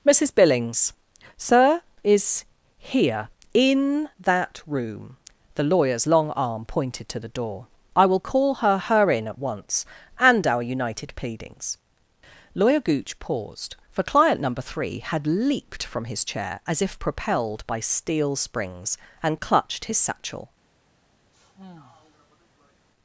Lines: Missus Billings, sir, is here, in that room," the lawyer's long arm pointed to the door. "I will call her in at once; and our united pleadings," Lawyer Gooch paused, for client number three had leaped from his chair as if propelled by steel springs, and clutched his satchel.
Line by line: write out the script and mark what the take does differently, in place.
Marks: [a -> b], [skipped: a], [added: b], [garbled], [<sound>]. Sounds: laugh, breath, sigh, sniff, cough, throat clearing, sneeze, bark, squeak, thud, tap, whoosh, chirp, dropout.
Missus Billings, sir, is here, in that room," the lawyer's long arm pointed to the door. "I will call her [added: her] in at once; and our united pleadings," Lawyer Gooch paused, for client number three had leaped from his chair as if propelled by steel springs, and clutched his satchel. [sigh]